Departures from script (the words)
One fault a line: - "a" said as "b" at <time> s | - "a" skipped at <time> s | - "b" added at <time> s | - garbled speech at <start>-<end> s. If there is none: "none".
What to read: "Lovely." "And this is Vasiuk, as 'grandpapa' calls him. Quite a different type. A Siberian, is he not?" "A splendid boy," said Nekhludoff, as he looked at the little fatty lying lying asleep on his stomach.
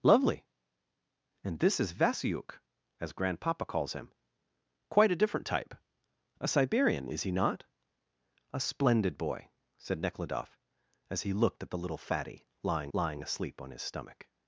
none